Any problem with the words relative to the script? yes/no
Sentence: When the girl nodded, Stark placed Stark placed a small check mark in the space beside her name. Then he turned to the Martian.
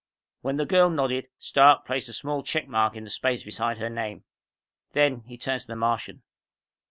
yes